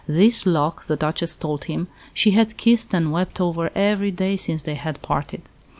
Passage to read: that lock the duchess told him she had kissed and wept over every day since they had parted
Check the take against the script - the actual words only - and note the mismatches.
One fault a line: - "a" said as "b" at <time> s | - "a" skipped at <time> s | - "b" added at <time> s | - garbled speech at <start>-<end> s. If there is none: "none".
- "that" said as "this" at 0.1 s